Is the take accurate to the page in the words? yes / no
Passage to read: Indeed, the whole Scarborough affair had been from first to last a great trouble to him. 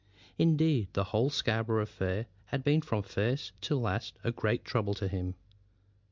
yes